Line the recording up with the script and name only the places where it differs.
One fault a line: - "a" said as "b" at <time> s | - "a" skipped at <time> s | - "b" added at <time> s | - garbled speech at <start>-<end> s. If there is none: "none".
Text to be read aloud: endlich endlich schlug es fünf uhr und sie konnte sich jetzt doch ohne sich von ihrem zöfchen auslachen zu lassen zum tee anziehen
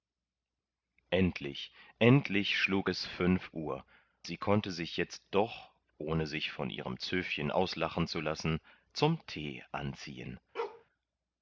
- "und" skipped at 3.8 s